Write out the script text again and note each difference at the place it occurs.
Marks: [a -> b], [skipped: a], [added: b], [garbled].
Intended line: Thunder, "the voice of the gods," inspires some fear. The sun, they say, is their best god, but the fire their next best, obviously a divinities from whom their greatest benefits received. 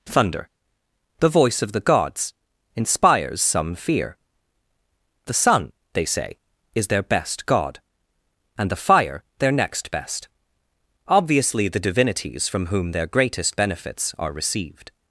Thunder, "the voice of the gods," inspires some fear. The sun, they say, is their best god, [but -> and] the fire their next best, obviously [a -> the] divinities from whom their greatest benefits [added: are] received.